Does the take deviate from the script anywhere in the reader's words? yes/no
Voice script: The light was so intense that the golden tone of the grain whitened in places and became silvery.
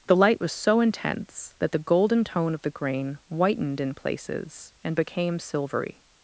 no